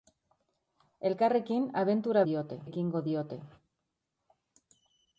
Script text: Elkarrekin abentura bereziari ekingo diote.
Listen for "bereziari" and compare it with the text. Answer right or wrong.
wrong